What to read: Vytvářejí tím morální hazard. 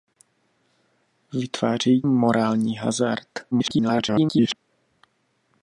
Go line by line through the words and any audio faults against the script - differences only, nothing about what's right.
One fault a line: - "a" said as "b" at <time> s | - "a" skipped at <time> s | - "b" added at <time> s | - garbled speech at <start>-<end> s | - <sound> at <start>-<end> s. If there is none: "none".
- "tím" skipped at 2.0 s
- garbled speech at 3.5-4.6 s